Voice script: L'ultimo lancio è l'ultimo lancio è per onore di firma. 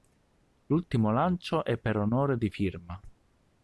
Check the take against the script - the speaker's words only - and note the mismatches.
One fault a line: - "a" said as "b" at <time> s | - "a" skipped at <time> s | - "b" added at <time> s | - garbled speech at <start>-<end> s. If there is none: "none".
- "l'ultimo lancio è" skipped at 1.8 s